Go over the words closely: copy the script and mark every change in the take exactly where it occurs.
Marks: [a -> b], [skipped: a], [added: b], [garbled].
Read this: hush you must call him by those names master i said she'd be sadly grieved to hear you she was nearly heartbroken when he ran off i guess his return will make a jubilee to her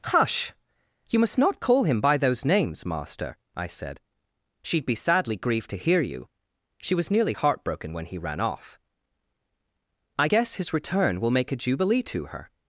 hush you must [added: not] call him by those names master i said she'd be sadly grieved to hear you she was nearly heartbroken when he ran off i guess his return will make a jubilee to her